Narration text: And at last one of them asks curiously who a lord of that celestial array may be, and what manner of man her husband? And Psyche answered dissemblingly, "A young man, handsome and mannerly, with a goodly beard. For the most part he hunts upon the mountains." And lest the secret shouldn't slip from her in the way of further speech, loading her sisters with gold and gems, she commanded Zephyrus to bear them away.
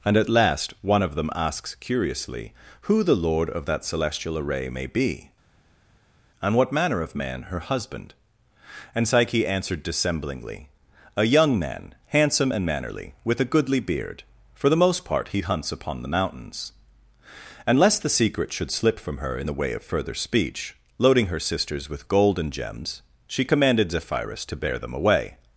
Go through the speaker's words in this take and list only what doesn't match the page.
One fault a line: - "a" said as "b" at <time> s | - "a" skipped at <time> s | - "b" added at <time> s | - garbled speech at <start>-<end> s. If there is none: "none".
- "a" said as "the" at 3.0 s
- "shouldn't" said as "should" at 18.5 s